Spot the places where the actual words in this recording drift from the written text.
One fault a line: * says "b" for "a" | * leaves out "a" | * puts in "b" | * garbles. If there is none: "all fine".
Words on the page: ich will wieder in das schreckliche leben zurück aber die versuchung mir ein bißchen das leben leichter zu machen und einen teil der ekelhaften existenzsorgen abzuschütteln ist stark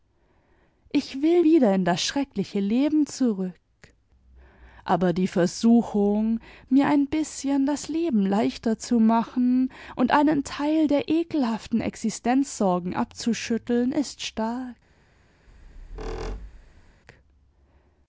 all fine